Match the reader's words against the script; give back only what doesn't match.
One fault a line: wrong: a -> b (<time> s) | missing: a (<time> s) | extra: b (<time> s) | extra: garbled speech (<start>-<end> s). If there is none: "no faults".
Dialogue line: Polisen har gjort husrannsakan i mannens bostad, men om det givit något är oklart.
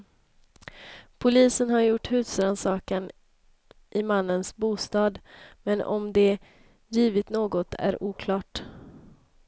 no faults